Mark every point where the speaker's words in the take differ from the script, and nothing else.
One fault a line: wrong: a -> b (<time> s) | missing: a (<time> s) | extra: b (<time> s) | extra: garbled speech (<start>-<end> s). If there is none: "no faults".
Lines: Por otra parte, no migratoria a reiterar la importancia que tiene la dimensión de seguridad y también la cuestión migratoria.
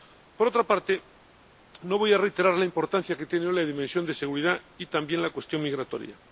wrong: migratoria -> voy (2.0 s)